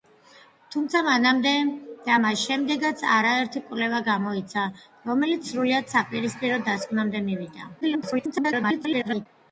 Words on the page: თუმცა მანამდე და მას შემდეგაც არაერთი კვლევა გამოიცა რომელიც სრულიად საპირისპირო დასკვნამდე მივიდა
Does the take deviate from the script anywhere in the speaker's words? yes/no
yes